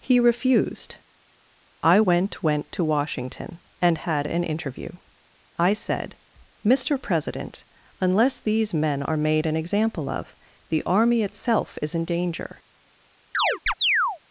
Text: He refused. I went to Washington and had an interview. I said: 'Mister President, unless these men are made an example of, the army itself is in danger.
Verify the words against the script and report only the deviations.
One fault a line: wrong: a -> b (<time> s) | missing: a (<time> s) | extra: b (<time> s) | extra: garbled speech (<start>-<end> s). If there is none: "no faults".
extra: went (2.4 s)